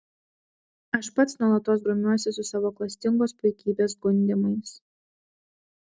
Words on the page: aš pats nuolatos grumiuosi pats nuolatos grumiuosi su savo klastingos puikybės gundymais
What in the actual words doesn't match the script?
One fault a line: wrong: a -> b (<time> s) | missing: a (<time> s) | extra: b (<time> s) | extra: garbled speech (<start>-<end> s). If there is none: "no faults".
missing: pats nuolatos grumiuosi (2.3 s)